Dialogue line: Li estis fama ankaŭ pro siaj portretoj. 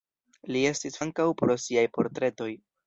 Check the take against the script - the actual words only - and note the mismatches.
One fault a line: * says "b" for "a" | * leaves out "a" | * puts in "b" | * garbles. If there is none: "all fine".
* leaves out "fama"